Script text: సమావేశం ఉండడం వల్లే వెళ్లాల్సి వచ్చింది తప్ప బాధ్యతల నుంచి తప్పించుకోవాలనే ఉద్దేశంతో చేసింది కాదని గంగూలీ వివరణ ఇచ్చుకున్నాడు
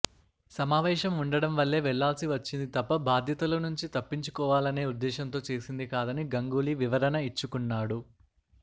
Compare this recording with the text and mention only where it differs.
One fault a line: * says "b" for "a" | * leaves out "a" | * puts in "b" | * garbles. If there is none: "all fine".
all fine